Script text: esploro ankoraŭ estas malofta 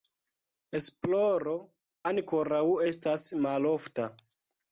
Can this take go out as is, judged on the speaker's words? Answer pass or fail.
pass